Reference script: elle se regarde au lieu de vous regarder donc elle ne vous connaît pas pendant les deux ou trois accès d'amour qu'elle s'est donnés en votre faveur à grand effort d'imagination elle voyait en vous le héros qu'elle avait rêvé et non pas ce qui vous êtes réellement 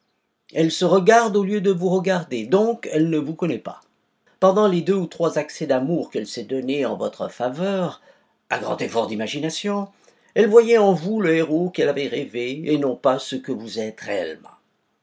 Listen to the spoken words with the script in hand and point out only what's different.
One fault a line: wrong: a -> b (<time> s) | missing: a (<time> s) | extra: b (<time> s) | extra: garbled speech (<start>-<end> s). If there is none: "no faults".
wrong: qui -> que (13.3 s)